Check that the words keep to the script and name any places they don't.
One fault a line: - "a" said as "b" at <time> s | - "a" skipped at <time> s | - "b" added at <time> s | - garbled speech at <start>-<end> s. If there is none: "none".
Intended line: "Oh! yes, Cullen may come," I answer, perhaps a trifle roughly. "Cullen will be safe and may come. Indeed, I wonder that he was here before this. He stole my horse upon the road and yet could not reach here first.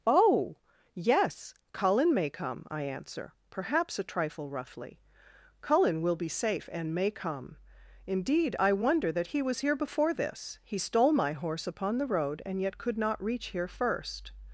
none